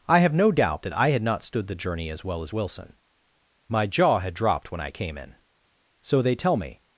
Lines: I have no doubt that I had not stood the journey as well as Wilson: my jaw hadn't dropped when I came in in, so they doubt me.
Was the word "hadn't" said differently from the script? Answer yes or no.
yes